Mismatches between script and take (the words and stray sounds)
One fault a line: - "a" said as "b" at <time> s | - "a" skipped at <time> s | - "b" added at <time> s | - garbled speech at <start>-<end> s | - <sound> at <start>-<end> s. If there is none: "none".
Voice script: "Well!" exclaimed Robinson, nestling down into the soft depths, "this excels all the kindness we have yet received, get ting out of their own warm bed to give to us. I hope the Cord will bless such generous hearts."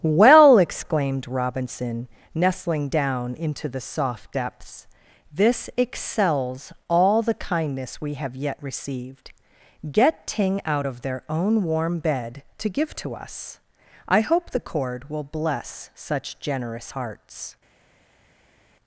none